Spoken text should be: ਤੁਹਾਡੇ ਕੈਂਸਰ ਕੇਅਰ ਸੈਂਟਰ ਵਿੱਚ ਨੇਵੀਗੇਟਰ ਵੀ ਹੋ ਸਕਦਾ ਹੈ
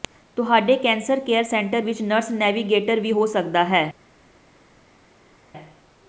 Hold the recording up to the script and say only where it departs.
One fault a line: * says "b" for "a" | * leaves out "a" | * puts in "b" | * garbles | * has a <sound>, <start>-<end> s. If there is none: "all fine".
* puts in "ਨਰਸ"